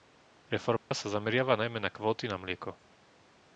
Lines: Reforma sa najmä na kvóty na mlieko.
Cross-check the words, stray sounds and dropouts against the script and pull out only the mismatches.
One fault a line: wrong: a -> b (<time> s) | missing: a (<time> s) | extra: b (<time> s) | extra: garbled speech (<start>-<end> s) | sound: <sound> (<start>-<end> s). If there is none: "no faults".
sound: dropout (0.8-0.9 s)
extra: zameriava (1.1 s)